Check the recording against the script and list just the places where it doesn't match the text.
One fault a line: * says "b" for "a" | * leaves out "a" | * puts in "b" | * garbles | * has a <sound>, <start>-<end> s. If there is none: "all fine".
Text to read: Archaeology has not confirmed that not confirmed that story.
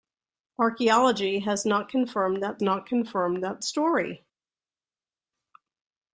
all fine